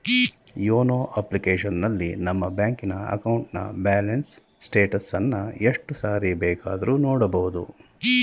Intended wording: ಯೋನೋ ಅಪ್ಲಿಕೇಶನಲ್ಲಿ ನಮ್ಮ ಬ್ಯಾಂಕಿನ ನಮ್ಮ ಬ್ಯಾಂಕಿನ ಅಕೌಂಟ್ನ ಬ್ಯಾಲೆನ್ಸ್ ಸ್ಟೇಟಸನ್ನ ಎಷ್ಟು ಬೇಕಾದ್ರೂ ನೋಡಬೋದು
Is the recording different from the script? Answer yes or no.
yes